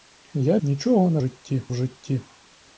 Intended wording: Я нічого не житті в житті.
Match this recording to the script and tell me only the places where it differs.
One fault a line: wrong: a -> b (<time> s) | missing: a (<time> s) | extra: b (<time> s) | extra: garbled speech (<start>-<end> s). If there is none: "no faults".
no faults